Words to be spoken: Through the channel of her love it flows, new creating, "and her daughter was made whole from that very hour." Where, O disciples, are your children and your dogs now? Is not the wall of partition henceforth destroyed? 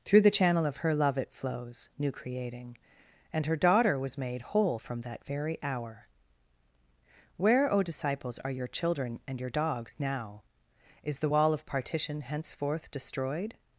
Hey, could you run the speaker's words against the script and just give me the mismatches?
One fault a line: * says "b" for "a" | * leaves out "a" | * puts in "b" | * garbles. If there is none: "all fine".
* leaves out "not"